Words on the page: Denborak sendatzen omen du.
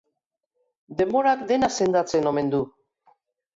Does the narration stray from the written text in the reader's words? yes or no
yes